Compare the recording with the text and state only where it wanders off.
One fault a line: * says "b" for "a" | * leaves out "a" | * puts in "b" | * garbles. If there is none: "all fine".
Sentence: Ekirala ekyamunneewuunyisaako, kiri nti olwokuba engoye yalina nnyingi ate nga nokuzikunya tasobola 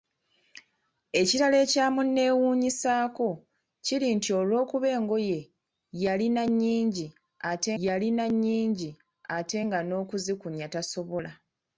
* puts in "yalina nnyingi ate"